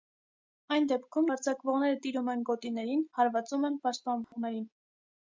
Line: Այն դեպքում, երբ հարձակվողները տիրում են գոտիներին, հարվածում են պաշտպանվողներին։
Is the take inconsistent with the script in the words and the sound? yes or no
yes